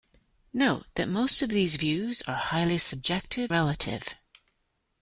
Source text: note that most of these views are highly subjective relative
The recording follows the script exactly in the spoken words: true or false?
true